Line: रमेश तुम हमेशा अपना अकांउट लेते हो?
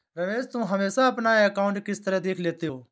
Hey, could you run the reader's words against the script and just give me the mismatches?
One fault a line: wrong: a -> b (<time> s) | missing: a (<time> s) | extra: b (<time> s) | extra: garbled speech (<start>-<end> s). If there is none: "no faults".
extra: किस तरह देख (1.9 s)